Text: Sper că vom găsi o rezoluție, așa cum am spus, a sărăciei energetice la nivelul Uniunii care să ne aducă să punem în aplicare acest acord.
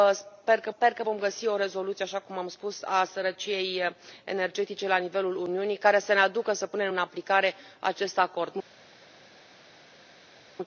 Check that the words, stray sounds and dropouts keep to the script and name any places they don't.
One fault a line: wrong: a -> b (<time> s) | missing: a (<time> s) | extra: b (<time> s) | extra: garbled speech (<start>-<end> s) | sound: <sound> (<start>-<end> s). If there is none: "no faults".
extra: sper că (0.8 s)